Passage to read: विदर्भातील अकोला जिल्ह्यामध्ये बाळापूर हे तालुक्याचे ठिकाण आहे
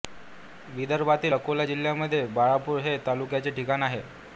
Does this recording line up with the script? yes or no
yes